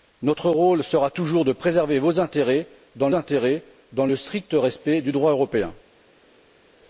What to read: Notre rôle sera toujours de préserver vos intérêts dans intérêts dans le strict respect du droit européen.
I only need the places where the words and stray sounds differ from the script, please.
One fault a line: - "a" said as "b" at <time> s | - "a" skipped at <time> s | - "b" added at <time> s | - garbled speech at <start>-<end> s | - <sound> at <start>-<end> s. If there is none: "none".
none